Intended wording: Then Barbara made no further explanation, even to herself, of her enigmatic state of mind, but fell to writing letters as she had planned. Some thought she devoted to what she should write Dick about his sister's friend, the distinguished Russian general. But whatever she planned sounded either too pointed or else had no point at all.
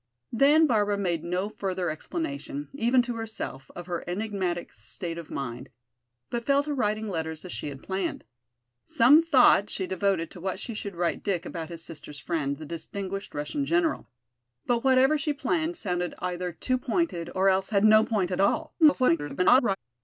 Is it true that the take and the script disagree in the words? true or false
true